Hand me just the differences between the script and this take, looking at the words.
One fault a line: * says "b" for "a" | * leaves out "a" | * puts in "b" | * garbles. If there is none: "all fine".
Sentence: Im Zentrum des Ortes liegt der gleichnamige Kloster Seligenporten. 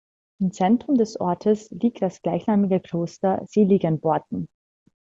* says "das" for "der"